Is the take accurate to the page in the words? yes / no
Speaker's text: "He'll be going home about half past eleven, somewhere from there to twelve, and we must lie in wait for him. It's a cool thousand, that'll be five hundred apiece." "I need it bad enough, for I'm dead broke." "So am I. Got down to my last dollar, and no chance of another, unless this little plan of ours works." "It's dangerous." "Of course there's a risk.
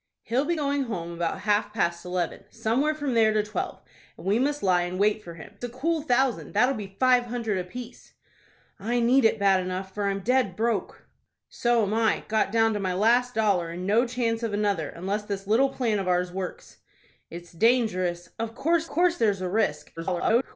no